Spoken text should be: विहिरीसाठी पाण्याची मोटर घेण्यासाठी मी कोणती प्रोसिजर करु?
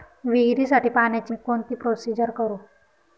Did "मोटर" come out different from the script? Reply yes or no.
yes